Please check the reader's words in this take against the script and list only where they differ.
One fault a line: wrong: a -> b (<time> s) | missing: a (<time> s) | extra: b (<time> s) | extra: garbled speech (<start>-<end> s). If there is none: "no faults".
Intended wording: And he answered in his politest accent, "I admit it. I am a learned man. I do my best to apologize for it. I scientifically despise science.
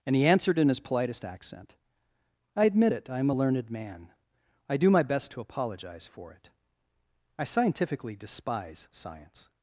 no faults